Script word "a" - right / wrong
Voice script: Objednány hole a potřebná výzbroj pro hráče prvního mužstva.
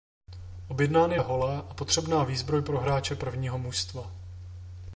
right